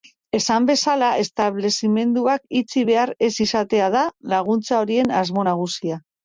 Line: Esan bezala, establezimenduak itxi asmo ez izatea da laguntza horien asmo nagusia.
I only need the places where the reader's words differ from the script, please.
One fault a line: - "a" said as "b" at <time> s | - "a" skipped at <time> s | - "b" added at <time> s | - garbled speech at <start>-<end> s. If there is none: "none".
- "asmo" said as "behar" at 2.9 s